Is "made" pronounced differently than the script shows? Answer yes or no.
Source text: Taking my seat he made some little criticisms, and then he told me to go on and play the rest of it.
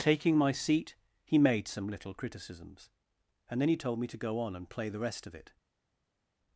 no